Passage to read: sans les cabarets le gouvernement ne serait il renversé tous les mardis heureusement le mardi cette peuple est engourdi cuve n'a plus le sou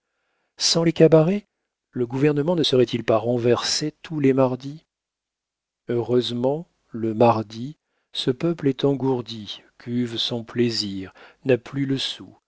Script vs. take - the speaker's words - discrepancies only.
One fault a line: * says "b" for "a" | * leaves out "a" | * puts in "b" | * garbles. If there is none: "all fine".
* puts in "pas"
* says "ce" for "cette"
* puts in "son plaisir"